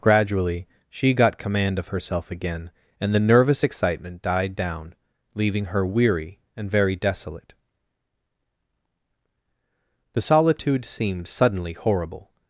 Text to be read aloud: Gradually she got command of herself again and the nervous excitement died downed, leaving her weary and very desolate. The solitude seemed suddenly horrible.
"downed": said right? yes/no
no